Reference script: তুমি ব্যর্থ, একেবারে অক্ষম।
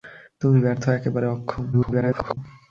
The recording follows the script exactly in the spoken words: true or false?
false